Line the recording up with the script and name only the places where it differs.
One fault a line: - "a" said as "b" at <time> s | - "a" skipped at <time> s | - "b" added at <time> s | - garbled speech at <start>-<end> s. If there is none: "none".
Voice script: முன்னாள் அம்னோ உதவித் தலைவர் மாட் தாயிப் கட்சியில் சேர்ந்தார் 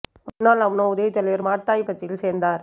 none